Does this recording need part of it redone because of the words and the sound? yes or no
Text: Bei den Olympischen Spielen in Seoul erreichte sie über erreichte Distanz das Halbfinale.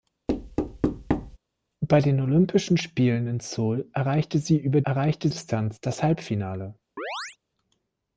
yes